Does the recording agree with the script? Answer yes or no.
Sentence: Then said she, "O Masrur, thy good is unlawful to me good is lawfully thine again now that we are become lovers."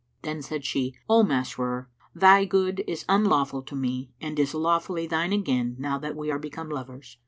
no